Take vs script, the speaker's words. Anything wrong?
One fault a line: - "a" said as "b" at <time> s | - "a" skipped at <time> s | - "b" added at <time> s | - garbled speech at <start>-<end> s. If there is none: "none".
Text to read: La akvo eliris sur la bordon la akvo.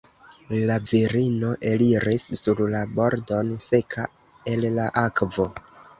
- "akvo" said as "virino" at 0.9 s
- "seka el" added at 3.6 s